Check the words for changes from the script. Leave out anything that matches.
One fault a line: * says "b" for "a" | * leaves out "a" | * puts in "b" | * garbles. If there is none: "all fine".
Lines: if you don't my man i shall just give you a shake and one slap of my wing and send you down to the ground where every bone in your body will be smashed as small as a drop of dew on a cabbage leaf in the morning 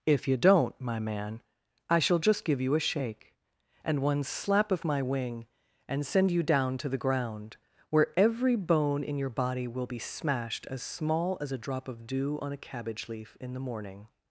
all fine